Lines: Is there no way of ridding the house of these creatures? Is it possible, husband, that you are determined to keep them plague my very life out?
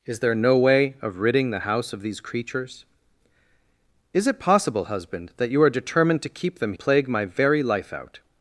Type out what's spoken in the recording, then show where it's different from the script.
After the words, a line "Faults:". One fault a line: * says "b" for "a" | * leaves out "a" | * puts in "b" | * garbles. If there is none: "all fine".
Is there no way of ridding the house of these creatures? Is it possible, husband, that you are determined to keep them plague my very life out?
Faults:
all fine